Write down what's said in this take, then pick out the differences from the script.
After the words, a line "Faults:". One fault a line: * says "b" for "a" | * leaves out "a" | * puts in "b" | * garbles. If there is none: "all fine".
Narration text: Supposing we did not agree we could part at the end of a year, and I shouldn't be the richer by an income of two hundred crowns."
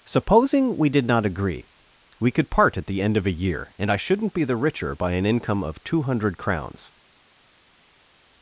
Supposing we did not agree we could part at the end of a year, and I shouldn't be the richer by an income of two hundred crowns."
Faults:
all fine